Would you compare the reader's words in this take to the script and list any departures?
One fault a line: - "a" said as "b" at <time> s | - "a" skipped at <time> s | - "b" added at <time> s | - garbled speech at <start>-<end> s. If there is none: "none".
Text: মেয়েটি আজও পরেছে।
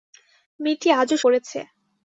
none